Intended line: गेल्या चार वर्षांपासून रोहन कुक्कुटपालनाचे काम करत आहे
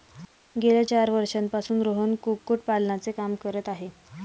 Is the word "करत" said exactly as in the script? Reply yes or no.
yes